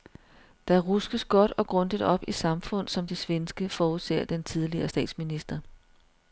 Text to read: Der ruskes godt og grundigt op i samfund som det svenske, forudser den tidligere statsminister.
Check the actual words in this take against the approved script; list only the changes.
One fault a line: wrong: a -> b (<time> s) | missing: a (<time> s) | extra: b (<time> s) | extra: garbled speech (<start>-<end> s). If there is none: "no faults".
no faults